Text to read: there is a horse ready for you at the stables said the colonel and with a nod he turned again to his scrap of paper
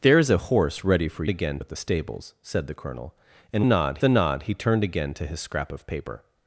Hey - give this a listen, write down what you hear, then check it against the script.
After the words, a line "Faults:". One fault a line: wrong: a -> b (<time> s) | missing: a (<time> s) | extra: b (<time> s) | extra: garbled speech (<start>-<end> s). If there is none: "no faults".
there is a horse ready for again at the stables said the colonel and nod a nod he turned again to his scrap of paper
Faults:
wrong: you -> again (1.3 s)
wrong: with -> nod (3.6 s)